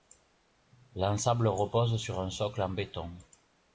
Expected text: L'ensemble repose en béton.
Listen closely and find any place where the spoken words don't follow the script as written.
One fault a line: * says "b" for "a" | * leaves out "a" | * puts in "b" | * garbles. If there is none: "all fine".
* puts in "sur un socle"